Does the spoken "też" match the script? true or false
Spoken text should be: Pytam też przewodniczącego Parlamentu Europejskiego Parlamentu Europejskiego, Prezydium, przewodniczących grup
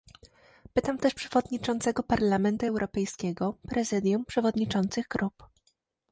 true